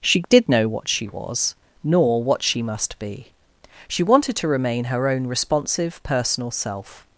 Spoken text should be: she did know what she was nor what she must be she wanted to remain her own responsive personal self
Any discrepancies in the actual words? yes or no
no